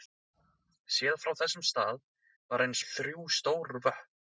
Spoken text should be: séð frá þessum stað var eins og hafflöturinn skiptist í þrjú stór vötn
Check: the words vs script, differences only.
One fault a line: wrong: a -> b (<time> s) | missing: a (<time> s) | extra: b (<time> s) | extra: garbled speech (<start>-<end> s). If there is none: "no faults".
missing: og hafflöturinn skiptist (2.8 s)